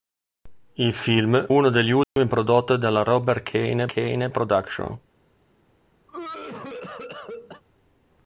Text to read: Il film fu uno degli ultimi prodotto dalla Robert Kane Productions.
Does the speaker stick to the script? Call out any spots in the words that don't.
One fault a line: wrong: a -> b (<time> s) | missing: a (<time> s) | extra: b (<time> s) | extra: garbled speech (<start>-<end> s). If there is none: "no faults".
missing: fu (1.5 s)
extra: Kane (3.9 s)